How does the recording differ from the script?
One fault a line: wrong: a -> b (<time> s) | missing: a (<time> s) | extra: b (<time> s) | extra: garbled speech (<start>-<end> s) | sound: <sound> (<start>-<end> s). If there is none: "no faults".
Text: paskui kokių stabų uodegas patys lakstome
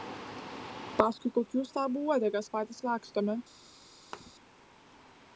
sound: thud (4.1-4.3 s)